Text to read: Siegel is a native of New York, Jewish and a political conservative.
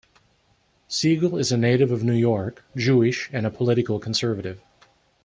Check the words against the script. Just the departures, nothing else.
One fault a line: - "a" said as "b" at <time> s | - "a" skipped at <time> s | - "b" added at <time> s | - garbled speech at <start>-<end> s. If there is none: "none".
none